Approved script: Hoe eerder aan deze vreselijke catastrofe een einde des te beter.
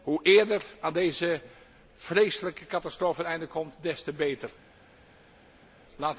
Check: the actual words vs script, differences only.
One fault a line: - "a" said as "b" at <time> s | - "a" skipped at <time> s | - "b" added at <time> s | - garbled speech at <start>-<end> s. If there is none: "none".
- "komt" added at 3.5 s